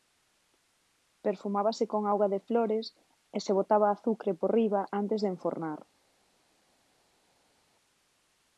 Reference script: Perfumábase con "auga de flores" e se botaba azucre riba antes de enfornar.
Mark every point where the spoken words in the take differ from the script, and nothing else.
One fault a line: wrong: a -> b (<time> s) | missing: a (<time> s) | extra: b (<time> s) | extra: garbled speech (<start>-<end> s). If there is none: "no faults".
extra: por (4.4 s)